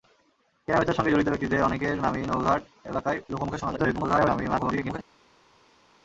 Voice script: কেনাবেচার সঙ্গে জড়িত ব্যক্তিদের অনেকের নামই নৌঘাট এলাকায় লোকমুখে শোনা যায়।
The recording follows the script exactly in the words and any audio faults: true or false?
false